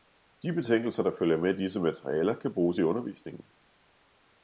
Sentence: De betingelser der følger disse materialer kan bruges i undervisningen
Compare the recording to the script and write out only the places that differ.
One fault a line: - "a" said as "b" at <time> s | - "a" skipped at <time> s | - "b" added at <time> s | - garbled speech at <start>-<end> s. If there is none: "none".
- "med" added at 1.4 s